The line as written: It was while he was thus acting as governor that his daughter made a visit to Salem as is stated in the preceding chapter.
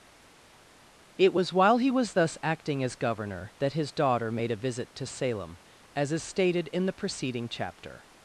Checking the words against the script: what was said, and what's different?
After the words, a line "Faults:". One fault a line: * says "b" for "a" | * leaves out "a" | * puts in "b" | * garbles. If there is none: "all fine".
It was while he was thus acting as governor that his daughter made a visit to Salem as is stated in the preceding chapter.
Faults:
all fine